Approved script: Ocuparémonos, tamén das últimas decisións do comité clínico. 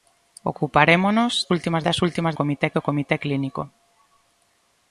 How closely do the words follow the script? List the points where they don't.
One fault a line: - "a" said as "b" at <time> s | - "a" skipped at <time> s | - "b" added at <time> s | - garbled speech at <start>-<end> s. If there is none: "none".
- "tamén" said as "últimas" at 1.5 s
- "decisións" said as "comité" at 2.4 s